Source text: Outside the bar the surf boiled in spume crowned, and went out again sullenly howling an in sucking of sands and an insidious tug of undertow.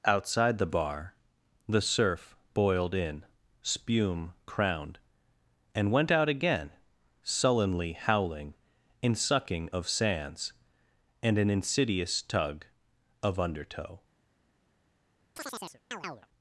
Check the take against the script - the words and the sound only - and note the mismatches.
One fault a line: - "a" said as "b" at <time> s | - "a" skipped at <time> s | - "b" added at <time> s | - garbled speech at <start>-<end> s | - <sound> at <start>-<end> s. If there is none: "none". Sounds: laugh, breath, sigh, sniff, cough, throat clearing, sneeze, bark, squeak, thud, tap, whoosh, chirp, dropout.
- "an" skipped at 8.6 s
- chirp at 15.4-16.3 s